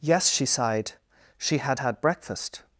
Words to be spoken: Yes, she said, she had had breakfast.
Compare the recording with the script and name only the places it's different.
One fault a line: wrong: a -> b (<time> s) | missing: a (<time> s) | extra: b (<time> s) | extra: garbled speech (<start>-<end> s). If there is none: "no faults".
wrong: said -> sighed (0.4 s)